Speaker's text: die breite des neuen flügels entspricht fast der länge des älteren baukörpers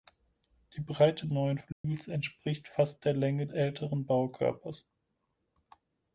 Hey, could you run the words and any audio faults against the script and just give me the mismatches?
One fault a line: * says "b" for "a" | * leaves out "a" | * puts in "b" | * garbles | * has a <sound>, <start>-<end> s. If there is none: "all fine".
* leaves out "des"
* has a dropout, 1.7-1.8 s
* leaves out "des"